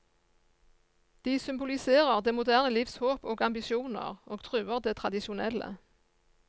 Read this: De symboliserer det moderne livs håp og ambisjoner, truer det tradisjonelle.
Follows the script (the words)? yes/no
no